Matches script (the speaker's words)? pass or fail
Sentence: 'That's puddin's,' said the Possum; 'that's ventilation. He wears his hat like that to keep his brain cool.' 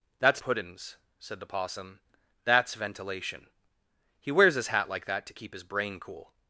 pass